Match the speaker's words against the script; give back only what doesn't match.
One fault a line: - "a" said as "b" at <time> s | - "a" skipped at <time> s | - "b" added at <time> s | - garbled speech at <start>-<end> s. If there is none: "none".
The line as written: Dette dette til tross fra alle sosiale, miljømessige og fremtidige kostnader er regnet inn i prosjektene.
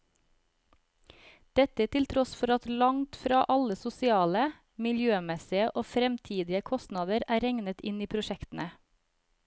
- "dette" skipped at 1.9 s
- "for at langt" added at 2.4 s